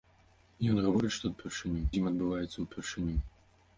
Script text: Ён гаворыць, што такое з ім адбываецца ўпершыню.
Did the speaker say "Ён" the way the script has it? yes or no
yes